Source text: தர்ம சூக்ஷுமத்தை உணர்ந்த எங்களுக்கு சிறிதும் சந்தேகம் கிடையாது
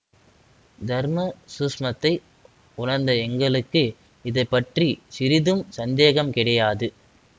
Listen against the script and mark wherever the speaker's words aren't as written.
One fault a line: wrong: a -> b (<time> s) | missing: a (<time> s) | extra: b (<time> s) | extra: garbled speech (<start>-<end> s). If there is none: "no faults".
extra: இதை பற்றி (4.2 s)